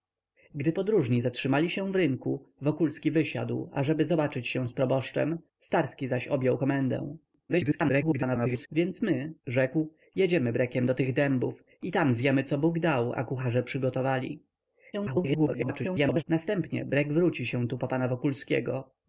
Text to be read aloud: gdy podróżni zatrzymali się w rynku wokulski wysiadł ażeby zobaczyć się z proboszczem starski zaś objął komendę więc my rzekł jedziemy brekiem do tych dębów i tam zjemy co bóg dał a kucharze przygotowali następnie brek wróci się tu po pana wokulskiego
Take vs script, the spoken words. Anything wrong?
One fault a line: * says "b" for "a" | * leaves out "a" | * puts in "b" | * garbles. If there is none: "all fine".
* garbles
* garbles